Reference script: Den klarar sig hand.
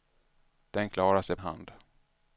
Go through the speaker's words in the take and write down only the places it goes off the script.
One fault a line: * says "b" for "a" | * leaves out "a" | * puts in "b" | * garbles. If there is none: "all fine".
all fine